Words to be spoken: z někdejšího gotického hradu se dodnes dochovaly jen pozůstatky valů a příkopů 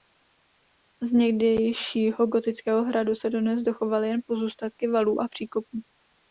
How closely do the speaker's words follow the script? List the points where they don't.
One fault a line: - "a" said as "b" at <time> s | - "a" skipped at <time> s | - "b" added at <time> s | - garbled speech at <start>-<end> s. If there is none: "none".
none